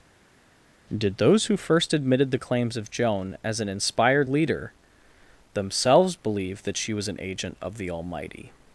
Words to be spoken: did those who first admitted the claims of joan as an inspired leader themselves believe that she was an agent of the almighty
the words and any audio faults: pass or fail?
pass